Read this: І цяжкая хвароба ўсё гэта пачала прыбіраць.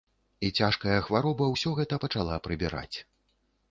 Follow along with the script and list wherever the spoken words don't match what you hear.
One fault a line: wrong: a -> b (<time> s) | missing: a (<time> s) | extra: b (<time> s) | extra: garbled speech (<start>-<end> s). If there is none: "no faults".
no faults